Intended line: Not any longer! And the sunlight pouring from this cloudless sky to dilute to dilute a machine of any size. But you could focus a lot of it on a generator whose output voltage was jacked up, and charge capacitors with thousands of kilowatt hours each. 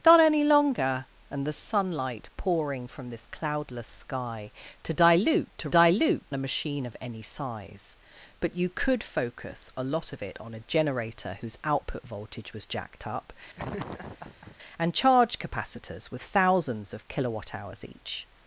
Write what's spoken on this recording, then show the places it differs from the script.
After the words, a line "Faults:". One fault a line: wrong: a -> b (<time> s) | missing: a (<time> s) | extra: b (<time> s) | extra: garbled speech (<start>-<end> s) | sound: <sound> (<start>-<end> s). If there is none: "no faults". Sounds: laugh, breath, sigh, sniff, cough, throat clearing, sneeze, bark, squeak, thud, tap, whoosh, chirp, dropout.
Not any longer! And the sunlight pouring from this cloudless sky to dilute to dilute a machine of any size. But you could focus a lot of it on a generator whose output voltage was jacked up, and charge capacitors with thousands of kilowatt hours each.
Faults:
sound: laugh (13.6-14.6 s)